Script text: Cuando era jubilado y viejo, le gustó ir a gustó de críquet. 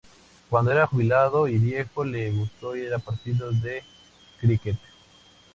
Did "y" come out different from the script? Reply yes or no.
no